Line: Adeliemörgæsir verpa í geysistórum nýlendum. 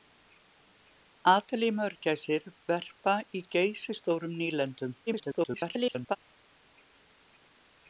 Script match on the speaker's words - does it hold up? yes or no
no